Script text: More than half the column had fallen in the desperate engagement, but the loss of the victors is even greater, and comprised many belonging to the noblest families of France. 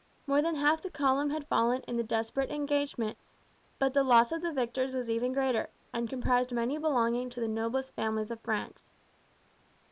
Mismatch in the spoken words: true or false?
true